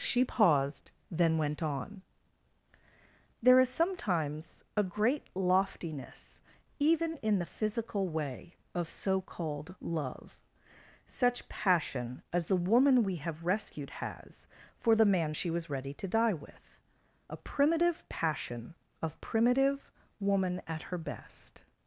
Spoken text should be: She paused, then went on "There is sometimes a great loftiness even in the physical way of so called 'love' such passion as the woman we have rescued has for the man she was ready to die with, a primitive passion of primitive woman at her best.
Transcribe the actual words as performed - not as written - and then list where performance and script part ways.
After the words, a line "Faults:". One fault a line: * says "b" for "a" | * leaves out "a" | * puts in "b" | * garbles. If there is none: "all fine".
She paused, then went on "There is sometimes a great loftiness even in the physical way of so called 'love' such passion as the woman we have rescued has for the man she was ready to die with, a primitive passion of primitive woman at her best.
Faults:
all fine